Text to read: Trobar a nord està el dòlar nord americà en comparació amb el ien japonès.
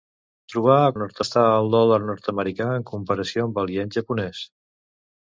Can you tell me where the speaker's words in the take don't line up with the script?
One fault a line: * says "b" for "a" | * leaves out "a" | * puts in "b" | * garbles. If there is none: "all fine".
all fine